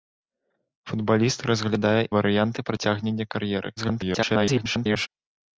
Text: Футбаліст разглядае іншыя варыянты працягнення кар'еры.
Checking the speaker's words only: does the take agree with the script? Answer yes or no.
no